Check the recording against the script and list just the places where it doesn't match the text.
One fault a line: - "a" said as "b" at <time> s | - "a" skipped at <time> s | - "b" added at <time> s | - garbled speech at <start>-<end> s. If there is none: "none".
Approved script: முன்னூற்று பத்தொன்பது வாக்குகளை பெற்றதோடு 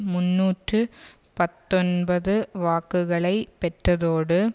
none